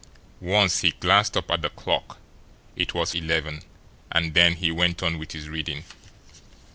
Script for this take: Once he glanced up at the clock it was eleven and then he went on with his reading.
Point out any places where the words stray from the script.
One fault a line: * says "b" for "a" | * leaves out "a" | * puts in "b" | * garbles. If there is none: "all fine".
all fine